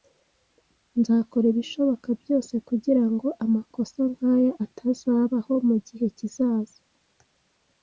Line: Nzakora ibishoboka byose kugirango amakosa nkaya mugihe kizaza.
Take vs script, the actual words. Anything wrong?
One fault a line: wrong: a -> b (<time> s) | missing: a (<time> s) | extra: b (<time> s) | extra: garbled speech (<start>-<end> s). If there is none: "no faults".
extra: atazabaho (4.7 s)